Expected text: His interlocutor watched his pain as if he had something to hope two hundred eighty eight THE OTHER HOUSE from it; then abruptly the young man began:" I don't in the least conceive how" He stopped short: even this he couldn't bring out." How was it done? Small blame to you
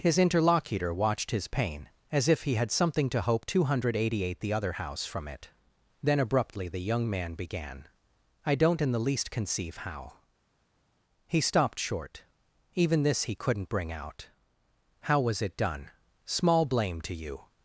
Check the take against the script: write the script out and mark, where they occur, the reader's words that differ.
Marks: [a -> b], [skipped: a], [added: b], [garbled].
His interlocutor watched his pain as if he had something to hope two hundred eighty eight THE OTHER HOUSE from it; then abruptly the young man began:" I don't in the least conceive how" He stopped short: even this he couldn't bring out." How was it done? Small blame to you